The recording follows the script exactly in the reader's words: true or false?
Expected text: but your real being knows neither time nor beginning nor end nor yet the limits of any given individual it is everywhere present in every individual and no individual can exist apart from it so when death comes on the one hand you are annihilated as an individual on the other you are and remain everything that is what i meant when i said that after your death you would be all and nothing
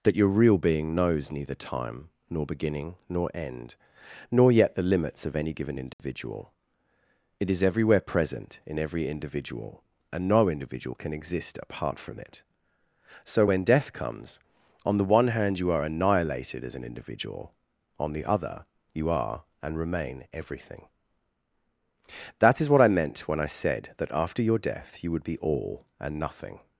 false